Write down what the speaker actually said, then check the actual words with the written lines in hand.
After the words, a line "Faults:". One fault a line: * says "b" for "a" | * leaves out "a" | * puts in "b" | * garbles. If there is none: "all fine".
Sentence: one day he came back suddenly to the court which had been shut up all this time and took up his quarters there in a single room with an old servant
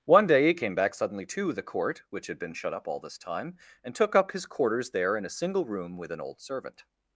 one day he came back suddenly to the court which had been shut up all this time and took up his quarters there in a single room with an old servant
Faults:
all fine